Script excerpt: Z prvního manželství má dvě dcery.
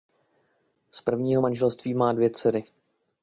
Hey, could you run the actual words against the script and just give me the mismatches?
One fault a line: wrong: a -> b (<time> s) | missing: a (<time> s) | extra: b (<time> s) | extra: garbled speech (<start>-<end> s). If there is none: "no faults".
no faults